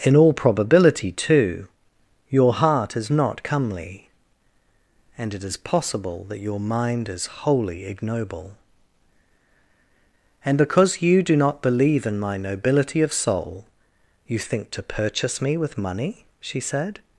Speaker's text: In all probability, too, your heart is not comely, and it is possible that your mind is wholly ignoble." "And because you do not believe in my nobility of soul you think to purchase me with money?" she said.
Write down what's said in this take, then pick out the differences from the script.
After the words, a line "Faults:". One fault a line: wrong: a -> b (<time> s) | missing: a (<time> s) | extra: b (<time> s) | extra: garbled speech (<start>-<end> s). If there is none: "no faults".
In all probability, too, your heart is not comely, and it is possible that your mind is wholly ignoble." "And because you do not believe in my nobility of soul you think to purchase me with money?" she said.
Faults:
no faults